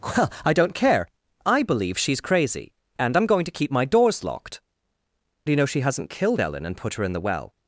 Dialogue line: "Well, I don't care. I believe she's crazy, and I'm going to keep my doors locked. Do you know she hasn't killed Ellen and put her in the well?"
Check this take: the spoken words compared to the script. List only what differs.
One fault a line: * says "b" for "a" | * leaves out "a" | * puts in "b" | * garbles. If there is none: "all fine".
all fine